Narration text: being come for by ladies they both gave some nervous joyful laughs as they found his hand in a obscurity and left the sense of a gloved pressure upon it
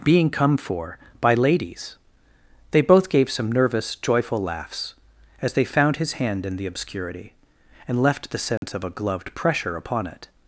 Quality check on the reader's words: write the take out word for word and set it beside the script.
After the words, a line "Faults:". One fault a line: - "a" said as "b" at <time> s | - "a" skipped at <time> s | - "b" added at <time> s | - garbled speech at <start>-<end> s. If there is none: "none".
being come for by ladies they both gave some nervous joyful laughs as they found his hand in the obscurity and left the sense of a gloved pressure upon it
Faults:
- "a" said as "the" at 6.6 s